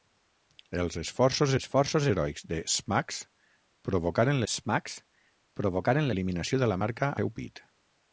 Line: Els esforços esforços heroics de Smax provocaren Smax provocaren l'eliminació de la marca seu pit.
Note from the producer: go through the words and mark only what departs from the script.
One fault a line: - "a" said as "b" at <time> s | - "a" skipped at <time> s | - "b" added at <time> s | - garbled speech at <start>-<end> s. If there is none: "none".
none